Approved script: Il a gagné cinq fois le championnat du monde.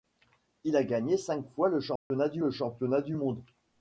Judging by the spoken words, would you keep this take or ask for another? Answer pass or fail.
fail